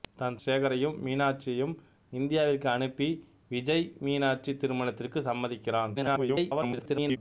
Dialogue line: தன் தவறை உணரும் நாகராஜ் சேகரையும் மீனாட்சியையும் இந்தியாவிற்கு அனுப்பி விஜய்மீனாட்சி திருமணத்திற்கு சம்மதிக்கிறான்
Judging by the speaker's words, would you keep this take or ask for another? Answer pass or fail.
fail